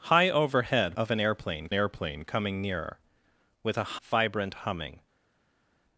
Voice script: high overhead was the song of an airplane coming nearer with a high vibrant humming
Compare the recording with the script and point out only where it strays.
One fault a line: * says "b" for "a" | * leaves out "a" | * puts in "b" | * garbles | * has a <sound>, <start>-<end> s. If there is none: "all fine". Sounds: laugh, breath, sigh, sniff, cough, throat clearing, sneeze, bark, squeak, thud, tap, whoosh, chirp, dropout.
* leaves out "was the song"
* puts in "airplane"
* leaves out "high"